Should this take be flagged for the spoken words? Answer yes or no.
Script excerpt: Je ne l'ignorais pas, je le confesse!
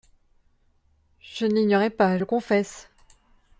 yes